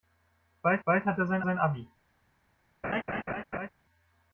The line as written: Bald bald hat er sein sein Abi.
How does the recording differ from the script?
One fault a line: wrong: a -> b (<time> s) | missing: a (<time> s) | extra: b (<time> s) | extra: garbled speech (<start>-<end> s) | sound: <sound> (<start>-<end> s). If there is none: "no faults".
sound: laugh (2.8-3.7 s)